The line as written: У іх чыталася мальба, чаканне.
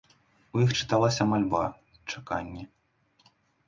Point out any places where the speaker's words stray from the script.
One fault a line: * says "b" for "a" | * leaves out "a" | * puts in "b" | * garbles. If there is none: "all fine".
all fine